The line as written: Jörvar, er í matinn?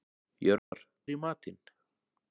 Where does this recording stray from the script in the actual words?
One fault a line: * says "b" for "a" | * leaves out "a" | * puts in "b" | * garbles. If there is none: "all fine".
all fine